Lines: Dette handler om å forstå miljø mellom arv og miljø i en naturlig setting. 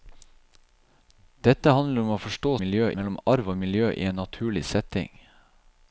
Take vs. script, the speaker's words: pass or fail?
pass